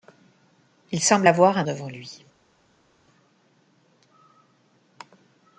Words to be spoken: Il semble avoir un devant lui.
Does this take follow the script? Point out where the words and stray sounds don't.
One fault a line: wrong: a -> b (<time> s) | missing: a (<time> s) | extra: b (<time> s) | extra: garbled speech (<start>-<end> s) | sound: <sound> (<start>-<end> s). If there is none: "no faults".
no faults